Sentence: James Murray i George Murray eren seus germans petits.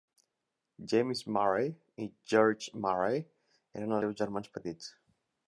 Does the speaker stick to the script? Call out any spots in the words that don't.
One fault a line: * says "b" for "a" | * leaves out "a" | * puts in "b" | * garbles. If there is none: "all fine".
all fine